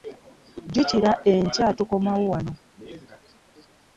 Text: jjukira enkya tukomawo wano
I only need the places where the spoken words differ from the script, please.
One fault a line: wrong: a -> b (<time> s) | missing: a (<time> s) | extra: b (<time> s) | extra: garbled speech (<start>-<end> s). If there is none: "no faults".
no faults